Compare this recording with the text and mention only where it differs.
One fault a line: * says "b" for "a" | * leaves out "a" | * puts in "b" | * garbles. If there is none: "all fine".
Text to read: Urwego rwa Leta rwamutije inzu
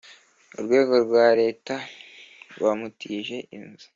all fine